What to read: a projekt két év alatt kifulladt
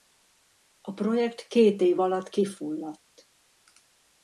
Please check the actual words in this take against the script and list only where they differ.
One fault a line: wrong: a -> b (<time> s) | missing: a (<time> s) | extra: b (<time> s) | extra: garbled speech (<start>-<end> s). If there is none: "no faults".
no faults